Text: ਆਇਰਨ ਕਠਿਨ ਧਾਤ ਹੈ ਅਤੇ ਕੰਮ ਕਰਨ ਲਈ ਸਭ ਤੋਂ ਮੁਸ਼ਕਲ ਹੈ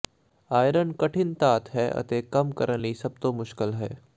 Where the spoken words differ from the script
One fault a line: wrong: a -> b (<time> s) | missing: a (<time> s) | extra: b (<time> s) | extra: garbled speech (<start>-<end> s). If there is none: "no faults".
no faults